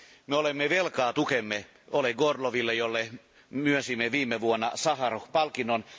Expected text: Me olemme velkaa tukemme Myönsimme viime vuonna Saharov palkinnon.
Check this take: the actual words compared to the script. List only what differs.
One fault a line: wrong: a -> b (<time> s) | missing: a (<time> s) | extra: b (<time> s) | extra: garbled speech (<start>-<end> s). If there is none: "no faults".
extra: Oleg Orloville jolle (1.9 s)